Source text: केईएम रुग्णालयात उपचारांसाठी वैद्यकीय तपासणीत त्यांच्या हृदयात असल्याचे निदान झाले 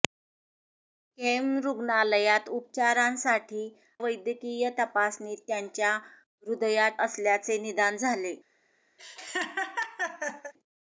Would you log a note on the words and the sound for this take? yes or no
yes